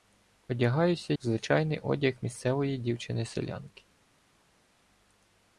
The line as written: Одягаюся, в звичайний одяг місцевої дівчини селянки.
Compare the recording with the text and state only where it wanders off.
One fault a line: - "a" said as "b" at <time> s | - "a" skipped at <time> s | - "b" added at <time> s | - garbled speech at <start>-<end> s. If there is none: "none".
none